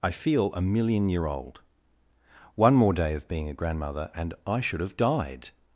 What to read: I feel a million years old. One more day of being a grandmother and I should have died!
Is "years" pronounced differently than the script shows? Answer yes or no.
yes